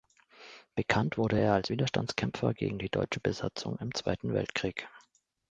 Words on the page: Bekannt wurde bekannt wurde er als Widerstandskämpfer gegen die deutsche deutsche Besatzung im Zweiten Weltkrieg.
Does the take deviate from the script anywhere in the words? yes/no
yes